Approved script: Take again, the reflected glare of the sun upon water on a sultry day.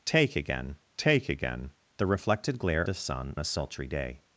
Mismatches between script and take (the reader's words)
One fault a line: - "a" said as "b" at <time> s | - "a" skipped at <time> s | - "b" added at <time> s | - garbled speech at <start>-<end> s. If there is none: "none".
- "take again" added at 1.0 s
- "of" skipped at 2.8 s
- "upon water on" skipped at 3.4 s